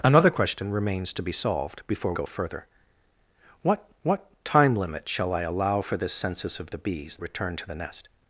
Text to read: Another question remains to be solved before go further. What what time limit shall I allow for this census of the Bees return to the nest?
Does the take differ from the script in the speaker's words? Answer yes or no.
no